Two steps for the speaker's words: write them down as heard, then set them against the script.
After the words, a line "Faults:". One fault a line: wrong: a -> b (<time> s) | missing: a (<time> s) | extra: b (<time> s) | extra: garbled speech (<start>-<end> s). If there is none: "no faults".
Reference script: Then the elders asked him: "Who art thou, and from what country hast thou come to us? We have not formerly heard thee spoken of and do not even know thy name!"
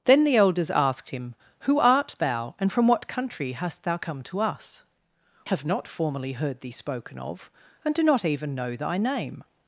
Then the elders asked him: "Who art thou, and from what country hast thou come to us? Have not formerly heard thee spoken of and do not even know thy name!"
Faults:
missing: We (4.8 s)